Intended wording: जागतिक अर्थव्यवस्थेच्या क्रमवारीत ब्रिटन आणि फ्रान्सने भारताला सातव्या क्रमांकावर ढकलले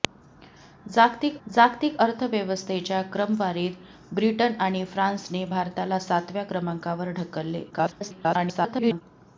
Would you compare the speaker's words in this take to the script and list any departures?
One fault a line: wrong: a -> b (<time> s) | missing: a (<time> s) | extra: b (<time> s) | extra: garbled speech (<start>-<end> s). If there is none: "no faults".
extra: जागतिक (1.5 s)
extra: garbled speech (7.7-9.0 s)